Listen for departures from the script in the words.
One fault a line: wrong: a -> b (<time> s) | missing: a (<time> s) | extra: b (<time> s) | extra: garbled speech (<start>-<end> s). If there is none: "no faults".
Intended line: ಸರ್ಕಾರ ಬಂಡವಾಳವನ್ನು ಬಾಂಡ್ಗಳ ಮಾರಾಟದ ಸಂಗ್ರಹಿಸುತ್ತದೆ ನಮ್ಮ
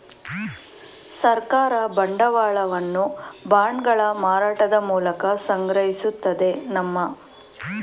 extra: ಮೂಲಕ (4.9 s)